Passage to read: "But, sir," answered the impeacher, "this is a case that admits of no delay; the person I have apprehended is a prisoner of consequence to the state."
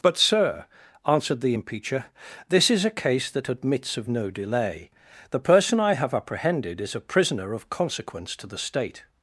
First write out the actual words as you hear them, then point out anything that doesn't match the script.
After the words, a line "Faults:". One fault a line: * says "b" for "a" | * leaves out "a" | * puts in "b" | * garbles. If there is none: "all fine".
"But, sir," answered the impeacher, "this is a case that admits of no delay; the person I have apprehended is a prisoner of consequence to the state."
Faults:
all fine